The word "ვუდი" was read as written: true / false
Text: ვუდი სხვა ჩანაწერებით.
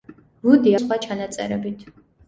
true